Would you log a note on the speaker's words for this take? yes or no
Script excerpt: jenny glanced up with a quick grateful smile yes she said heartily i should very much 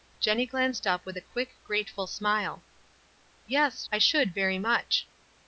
yes